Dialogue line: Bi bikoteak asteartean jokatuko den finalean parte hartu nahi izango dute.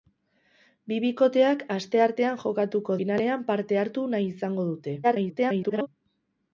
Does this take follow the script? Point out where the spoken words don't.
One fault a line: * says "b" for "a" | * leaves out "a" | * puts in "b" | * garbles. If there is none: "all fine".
* leaves out "den"
* garbles